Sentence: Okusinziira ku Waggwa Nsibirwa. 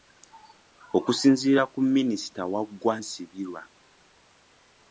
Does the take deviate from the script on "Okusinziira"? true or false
false